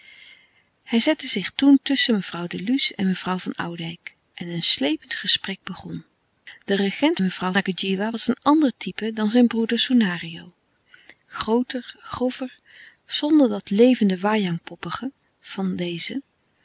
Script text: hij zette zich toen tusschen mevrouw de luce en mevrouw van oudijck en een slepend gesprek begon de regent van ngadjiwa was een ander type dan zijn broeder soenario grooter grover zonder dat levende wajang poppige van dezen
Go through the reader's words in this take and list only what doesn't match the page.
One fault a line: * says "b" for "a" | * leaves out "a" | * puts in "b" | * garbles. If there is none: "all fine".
* says "mevrouw" for "van"